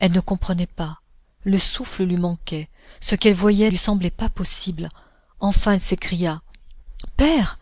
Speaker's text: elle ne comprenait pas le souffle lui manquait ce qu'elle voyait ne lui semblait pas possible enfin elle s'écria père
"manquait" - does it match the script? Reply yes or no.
yes